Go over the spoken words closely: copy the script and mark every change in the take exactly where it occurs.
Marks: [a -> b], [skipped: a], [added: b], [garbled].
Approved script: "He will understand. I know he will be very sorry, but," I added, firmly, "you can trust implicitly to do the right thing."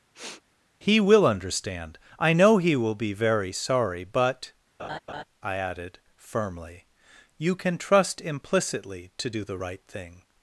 "He will understand. I know he will be very sorry, but," I added, firmly, "you can trust implicitly to do the right thing."